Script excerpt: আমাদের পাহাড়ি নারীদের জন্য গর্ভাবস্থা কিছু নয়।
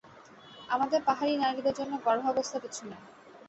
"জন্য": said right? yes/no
yes